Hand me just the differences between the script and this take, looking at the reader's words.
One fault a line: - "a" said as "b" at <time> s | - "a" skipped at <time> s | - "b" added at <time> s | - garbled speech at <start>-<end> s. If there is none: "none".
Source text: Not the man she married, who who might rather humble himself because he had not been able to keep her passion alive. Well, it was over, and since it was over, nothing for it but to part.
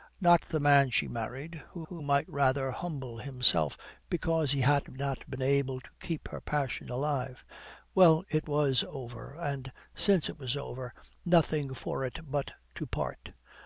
none